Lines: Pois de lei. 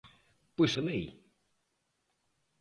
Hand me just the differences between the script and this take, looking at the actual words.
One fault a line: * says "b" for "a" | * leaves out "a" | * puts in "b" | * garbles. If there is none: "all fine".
all fine